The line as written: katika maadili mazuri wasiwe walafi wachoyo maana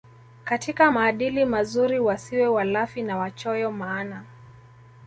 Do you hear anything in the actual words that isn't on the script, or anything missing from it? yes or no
yes